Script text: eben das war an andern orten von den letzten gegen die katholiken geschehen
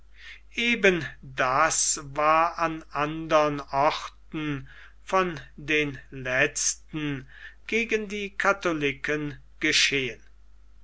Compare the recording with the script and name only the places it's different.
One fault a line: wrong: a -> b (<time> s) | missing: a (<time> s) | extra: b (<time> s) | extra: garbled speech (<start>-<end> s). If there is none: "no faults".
no faults